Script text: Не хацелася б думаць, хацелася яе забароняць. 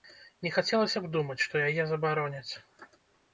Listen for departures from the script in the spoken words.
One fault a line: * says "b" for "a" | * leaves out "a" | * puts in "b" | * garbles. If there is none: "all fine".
* says "што" for "хацелася"